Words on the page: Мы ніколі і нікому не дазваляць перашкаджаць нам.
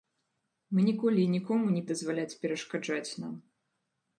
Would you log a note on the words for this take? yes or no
no